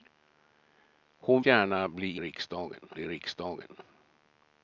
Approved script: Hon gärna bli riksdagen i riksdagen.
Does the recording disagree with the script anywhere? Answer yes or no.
no